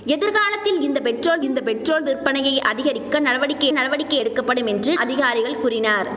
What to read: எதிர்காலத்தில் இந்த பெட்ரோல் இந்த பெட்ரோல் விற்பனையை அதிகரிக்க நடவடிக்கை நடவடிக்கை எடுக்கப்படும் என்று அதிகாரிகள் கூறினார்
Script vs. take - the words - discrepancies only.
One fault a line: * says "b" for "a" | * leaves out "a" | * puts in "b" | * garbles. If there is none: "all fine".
all fine